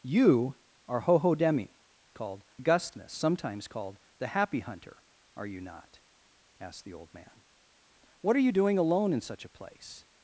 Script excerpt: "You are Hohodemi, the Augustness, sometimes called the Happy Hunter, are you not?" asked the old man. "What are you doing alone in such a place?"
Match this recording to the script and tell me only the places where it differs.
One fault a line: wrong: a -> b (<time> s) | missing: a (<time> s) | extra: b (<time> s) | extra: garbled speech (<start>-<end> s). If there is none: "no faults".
wrong: the -> called (2.1 s)